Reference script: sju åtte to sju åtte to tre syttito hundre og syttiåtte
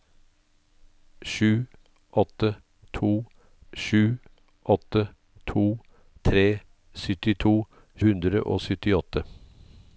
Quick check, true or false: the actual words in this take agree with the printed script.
true